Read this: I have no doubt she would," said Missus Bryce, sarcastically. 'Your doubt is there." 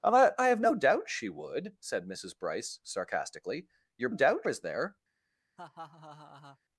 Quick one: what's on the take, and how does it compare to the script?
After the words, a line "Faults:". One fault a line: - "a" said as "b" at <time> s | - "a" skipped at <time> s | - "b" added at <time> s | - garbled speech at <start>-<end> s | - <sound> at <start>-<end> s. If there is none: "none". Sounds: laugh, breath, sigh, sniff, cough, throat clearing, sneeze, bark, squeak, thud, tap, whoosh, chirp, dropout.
I have no doubt she would," said Missus Bryce, sarcastically. 'Your doubt is there."
Faults:
- laugh at 5.6-6.6 s